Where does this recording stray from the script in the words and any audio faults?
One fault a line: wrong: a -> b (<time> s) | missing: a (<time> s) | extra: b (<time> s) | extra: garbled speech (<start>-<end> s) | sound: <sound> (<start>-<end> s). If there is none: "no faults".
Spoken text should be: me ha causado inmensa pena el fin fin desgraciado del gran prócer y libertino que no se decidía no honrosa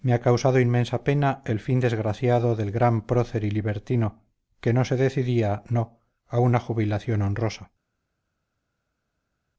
missing: fin (1.8 s)
extra: a una jubilación (6.3 s)